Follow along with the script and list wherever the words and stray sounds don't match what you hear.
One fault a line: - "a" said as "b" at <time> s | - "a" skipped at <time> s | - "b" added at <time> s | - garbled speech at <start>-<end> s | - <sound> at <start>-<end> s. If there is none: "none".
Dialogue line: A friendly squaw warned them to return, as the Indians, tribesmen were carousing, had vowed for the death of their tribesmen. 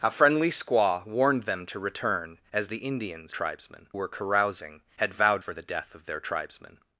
none